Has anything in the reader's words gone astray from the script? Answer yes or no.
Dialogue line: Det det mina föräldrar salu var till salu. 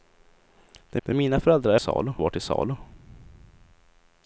no